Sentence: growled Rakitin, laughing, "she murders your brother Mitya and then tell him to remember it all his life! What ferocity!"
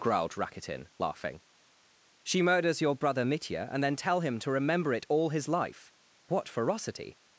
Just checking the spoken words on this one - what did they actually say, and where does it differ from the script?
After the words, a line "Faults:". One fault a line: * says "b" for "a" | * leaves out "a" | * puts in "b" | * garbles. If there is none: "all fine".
growled Rakitin, laughing, "she murders your brother Mitya and then tell him to remember it all his life! What ferocity!"
Faults:
all fine